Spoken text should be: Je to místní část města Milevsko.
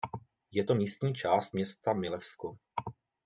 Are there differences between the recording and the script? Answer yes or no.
no